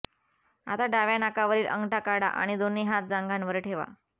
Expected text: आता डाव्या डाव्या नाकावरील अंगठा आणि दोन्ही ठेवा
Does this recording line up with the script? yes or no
no